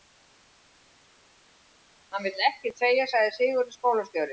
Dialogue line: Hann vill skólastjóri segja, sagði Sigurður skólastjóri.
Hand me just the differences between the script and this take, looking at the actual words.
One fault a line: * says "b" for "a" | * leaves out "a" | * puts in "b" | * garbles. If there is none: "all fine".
* says "ekkert" for "skólastjóri"